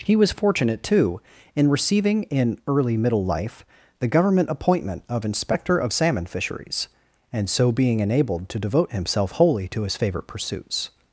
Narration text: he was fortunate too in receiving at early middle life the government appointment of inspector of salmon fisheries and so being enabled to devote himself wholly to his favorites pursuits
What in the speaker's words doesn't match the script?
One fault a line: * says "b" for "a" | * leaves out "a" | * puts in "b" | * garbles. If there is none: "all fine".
* says "in" for "at"
* says "favorite" for "favorites"